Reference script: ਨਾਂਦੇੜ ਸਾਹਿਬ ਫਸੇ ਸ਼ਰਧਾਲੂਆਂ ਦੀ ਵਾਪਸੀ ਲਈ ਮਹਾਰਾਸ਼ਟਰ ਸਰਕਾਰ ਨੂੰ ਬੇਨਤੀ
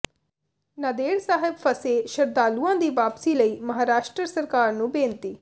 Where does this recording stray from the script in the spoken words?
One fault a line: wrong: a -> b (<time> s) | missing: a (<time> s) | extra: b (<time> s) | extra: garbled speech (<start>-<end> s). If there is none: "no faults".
no faults